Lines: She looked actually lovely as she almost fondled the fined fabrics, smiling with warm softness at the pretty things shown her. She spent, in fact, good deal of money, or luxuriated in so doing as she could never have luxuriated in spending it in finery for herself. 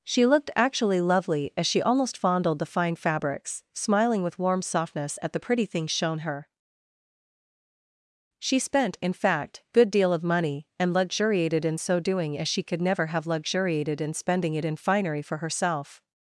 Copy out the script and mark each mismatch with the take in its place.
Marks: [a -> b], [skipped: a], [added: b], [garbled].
She looked actually lovely as she almost fondled the [fined -> fine] fabrics, smiling with warm softness at the pretty things shown her. She spent, in fact, good deal of money, [or -> and] luxuriated in so doing as she could never have luxuriated in spending it in finery for herself.